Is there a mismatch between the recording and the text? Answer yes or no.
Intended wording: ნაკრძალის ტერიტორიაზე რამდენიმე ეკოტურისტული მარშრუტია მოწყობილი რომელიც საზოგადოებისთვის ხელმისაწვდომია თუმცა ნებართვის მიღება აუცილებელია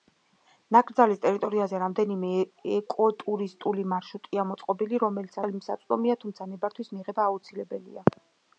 yes